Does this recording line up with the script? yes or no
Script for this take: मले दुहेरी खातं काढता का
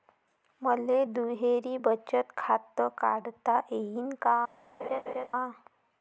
no